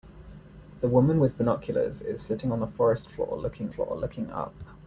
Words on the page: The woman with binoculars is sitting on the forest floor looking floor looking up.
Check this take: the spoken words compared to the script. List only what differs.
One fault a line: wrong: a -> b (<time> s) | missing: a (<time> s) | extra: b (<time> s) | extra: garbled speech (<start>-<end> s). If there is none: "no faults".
no faults